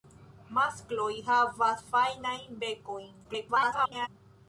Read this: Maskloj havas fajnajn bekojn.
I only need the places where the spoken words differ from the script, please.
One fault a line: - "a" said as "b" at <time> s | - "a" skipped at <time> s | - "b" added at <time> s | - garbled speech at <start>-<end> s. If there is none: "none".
- garbled speech at 3.2-4.1 s